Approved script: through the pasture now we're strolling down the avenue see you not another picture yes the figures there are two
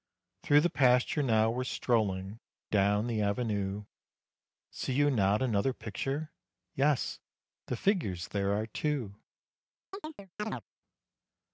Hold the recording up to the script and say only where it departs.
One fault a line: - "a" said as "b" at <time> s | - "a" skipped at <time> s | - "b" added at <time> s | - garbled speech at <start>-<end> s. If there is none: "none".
none